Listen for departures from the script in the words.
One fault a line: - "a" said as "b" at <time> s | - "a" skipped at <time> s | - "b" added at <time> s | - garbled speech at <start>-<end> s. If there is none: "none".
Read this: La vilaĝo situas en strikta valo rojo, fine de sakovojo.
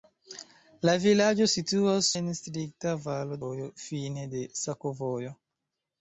none